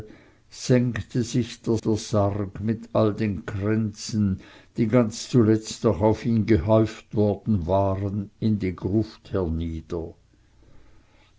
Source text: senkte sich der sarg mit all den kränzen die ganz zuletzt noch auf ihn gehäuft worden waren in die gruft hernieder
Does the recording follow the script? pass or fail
fail